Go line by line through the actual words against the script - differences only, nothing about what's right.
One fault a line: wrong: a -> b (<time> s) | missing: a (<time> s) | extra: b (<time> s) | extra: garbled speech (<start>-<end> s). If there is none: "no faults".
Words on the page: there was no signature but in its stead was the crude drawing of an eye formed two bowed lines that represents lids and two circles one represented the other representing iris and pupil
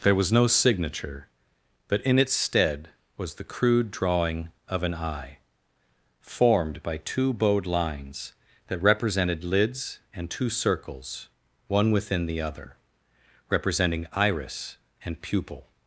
extra: by (6.8 s)
wrong: represents -> represented (8.8 s)
wrong: represented -> within (11.9 s)